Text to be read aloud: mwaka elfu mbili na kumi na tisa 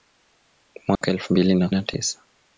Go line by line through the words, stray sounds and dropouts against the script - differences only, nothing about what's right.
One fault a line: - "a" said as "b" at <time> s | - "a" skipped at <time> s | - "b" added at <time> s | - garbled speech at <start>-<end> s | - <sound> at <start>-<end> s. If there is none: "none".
- dropout at 1.0-1.0 s
- "kumi" skipped at 1.7 s